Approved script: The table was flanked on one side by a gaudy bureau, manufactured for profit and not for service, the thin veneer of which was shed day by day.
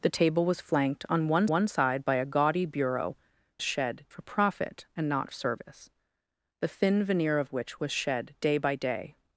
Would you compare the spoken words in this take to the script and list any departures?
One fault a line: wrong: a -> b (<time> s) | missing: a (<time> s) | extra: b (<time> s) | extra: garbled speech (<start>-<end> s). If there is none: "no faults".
extra: one (1.5 s)
wrong: manufactured -> shed (3.6 s)
missing: for (5.3 s)